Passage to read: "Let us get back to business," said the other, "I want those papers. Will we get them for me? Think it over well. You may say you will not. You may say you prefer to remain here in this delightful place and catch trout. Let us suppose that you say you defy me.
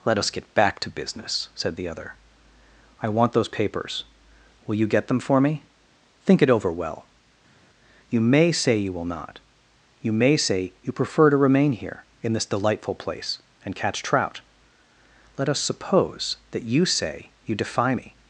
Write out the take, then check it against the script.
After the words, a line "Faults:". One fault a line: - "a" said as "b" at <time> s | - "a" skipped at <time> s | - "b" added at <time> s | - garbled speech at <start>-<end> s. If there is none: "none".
"Let us get back to business," said the other, "I want those papers. Will you get them for me? Think it over well. You may say you will not. You may say you prefer to remain here in this delightful place and catch trout. Let us suppose that you say you defy me.
Faults:
- "we" said as "you" at 4.7 s